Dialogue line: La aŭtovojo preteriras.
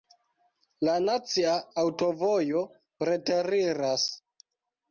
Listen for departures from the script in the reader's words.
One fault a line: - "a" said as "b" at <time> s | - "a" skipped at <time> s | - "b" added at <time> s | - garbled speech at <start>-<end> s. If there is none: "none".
- "nacia" added at 1.1 s